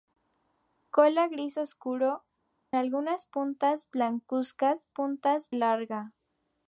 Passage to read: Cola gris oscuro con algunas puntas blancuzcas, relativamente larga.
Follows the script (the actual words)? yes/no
no